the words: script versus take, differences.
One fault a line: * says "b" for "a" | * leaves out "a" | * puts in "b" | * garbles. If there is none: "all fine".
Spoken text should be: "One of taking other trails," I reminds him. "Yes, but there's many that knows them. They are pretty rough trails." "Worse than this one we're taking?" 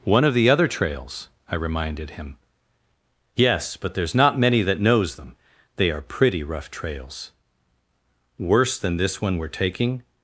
* says "the" for "taking"
* says "reminded" for "reminds"
* puts in "not"